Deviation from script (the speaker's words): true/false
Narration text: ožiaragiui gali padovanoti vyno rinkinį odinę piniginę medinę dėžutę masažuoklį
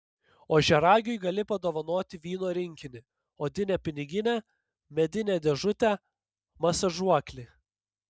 false